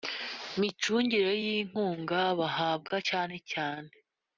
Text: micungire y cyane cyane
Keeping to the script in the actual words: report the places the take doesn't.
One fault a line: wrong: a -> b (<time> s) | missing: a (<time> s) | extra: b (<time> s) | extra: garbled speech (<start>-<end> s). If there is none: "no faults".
extra: inkunga bahabwa (1.6 s)